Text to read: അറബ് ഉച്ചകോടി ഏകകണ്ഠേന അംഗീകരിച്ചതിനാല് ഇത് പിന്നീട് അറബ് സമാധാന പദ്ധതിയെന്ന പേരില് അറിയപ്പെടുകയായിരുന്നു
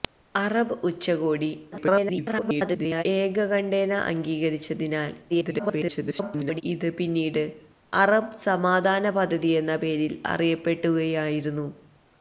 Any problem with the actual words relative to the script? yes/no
yes